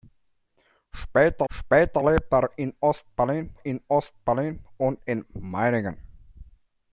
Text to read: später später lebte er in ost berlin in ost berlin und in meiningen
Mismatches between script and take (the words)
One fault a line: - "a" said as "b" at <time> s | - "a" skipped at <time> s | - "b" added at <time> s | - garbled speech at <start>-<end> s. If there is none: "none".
none